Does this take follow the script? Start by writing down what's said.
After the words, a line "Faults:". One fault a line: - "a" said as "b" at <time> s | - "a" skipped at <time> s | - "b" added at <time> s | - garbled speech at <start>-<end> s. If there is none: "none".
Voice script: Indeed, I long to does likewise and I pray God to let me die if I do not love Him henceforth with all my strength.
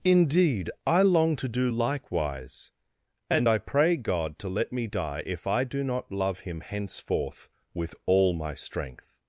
Indeed, I long to do likewise and I pray God to let me die if I do not love Him henceforth with all my strength.
Faults:
- "does" said as "do" at 1.5 s